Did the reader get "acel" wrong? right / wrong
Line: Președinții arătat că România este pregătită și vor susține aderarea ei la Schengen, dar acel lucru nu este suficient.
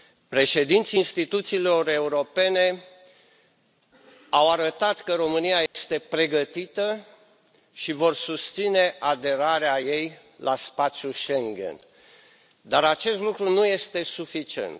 wrong